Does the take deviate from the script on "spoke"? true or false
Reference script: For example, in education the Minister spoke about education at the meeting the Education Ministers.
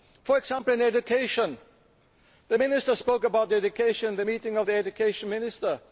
false